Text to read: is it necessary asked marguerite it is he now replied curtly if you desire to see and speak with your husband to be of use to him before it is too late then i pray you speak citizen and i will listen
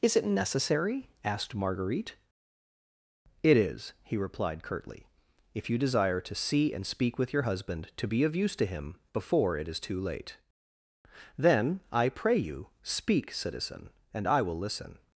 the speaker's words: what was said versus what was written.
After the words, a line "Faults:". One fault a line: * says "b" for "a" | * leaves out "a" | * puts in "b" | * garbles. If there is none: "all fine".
is it necessary asked marguerite it is he replied curtly if you desire to see and speak with your husband to be of use to him before it is too late then i pray you speak citizen and i will listen
Faults:
* leaves out "now"